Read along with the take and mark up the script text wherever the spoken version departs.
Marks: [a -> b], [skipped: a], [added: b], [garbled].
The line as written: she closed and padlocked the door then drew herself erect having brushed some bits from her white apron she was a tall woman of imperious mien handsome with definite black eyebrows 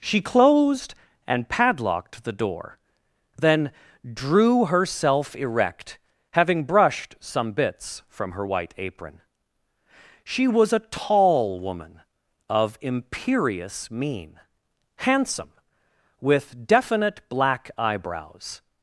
she closed and padlocked the door then drew herself erect having brushed some bits from her white apron she was a tall woman of imperious mien handsome with definite black eyebrows